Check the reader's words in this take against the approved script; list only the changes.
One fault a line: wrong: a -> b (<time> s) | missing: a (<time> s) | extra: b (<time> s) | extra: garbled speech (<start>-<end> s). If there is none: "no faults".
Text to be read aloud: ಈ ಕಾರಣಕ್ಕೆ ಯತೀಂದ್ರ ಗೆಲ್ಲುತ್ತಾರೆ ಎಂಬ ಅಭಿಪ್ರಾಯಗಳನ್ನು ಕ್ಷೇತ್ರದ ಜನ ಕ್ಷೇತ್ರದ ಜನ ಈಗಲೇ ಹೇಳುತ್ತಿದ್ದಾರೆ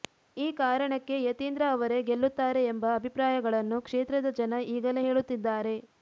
extra: ಅವರೇ (1.7 s)
missing: ಕ್ಷೇತ್ರದ ಜನ (4.5 s)